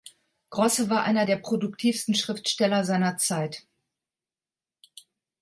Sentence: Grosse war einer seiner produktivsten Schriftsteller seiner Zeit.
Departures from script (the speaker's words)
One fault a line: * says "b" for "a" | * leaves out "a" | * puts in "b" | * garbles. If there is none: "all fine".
* says "der" for "seiner"